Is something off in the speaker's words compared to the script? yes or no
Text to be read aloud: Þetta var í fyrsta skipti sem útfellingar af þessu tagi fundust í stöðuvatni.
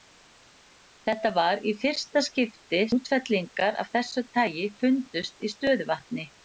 yes